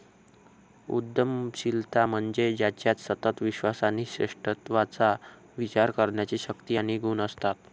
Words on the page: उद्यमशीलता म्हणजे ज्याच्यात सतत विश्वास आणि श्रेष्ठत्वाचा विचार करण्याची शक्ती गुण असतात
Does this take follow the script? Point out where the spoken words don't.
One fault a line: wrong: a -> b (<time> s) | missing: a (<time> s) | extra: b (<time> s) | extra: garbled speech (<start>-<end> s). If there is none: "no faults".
extra: आणि (6.7 s)